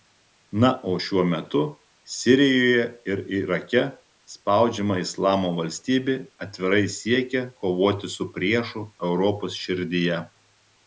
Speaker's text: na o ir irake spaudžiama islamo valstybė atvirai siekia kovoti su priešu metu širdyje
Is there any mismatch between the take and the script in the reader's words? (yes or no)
yes